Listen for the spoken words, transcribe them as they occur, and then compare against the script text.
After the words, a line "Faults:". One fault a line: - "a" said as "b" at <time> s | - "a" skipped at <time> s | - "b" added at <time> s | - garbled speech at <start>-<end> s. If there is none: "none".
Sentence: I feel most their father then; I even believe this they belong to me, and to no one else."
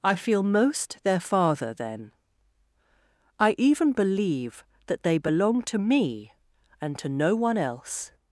I feel most their father then; I even believe that they belong to me, and to no one else."
Faults:
- "this" said as "that" at 4.9 s